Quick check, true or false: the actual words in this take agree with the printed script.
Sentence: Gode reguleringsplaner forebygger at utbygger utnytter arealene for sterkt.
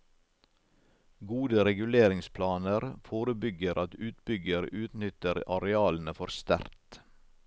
true